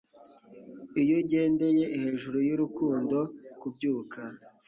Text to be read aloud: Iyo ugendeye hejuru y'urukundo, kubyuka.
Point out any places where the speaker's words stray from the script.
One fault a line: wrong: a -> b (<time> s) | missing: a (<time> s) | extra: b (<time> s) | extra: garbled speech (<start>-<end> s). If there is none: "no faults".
no faults